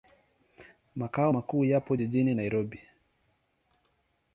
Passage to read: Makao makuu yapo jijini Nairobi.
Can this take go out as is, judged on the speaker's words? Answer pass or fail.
pass